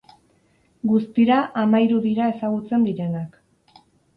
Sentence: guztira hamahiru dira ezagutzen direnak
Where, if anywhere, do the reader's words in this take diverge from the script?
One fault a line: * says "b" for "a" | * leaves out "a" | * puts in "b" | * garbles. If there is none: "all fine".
all fine